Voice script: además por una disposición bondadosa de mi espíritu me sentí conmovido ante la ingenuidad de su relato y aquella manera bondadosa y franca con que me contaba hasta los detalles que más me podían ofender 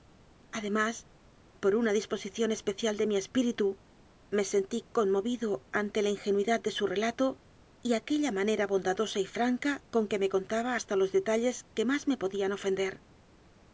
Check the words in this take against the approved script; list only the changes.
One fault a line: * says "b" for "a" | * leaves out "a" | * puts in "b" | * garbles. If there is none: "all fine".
* says "especial" for "bondadosa"